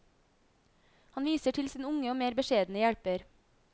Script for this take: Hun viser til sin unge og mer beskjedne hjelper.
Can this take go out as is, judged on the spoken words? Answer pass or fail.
fail